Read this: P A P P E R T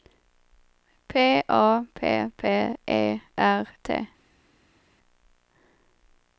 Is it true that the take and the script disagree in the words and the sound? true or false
false